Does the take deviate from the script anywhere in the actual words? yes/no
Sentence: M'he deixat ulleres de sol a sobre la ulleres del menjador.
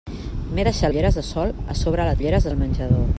no